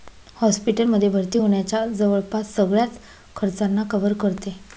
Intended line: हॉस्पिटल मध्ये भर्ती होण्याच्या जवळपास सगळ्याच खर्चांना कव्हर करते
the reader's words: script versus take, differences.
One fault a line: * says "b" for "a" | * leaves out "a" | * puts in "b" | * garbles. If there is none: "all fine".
all fine